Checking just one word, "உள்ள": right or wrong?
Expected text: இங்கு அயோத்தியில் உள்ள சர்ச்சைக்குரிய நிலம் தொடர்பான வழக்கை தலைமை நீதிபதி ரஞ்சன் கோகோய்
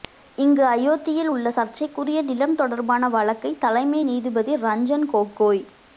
right